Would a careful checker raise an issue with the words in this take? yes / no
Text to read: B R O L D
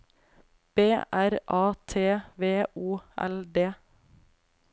yes